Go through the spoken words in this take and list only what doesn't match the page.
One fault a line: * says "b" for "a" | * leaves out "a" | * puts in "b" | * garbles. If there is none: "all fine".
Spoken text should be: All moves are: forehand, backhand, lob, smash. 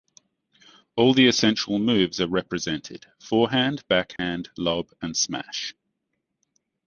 * puts in "the essential"
* puts in "represented"
* puts in "and"